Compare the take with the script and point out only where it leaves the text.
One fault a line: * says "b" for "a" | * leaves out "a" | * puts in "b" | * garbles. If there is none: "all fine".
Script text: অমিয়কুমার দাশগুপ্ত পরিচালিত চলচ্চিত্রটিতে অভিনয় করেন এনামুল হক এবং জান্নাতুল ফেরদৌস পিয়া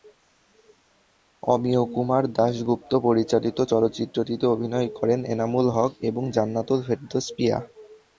all fine